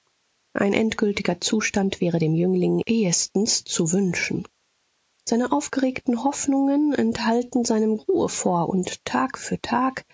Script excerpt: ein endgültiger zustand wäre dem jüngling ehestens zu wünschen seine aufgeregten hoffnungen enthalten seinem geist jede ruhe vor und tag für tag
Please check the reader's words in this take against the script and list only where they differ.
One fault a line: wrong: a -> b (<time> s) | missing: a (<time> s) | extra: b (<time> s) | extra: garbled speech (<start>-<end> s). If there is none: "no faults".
missing: geist jede (8.0 s)